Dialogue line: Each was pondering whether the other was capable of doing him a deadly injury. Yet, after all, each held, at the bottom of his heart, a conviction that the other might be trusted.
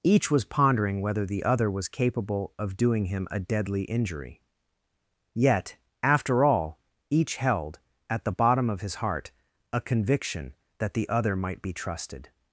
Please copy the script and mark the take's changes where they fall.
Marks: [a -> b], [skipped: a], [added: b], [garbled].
Each was pondering whether the other was capable of doing him a deadly injury. Yet, after all, each held, at the bottom of his heart, a conviction that the other might be trusted.